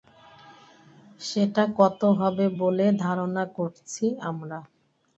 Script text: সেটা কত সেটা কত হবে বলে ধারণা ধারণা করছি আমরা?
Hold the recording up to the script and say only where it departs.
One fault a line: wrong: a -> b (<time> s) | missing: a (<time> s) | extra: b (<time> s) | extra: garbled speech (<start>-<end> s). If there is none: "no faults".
missing: সেটা কত (2.0 s)
missing: ধারণা (3.4 s)